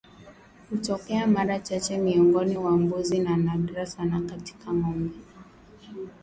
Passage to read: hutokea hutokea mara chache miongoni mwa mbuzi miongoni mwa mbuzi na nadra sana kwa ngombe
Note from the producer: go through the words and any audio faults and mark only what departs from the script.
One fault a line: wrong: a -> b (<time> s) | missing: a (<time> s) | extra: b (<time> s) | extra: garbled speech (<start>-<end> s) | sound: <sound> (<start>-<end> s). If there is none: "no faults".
missing: hutokea (1.3 s)
missing: miongoni mwa mbuzi (3.2 s)
wrong: kwa -> katika (4.2 s)